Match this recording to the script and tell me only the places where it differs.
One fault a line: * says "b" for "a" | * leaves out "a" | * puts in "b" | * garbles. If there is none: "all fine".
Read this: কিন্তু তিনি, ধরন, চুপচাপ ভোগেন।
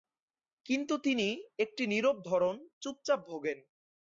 * puts in "একটি নীরব"